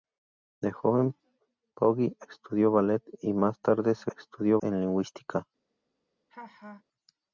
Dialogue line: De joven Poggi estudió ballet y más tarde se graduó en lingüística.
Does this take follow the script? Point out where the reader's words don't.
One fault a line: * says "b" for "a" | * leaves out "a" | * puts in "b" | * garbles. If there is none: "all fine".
* says "estudió" for "graduó"